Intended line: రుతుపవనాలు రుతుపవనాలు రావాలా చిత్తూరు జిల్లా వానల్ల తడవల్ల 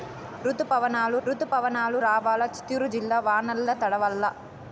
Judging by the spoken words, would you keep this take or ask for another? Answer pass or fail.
pass